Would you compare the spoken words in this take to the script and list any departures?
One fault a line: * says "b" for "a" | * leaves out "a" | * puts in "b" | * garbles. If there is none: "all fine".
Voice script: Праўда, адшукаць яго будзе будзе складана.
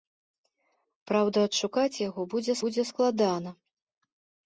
all fine